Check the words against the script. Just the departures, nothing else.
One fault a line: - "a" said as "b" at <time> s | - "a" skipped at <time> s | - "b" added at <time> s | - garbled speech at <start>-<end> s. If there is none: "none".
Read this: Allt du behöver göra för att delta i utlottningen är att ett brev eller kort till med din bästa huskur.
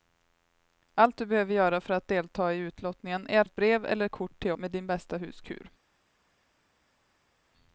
none